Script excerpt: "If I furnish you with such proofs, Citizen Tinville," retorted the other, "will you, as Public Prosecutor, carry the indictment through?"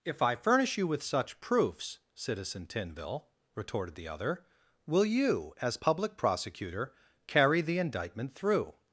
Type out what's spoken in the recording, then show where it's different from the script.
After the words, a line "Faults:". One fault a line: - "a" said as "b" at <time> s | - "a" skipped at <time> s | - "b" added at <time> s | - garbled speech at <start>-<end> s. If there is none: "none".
"If I furnish you with such proofs, Citizen Tinville," retorted the other, "will you, as Public Prosecutor, carry the indictment through?"
Faults:
none